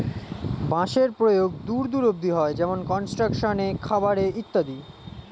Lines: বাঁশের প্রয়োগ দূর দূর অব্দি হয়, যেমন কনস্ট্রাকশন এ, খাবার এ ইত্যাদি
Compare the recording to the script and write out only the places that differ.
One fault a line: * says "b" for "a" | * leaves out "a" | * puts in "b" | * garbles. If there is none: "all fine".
all fine